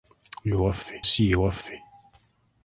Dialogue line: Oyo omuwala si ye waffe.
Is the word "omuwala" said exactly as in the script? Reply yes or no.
no